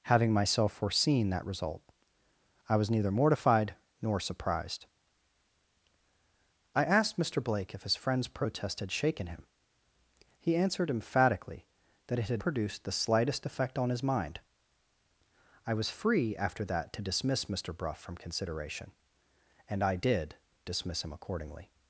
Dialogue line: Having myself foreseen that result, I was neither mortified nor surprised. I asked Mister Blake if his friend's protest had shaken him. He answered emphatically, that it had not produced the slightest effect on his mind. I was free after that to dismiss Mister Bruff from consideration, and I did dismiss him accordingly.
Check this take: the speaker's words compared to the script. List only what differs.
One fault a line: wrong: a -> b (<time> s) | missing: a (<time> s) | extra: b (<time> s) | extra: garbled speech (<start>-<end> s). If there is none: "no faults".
missing: not (12.4 s)